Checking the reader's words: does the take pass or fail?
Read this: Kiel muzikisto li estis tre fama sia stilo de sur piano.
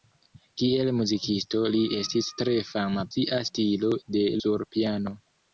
pass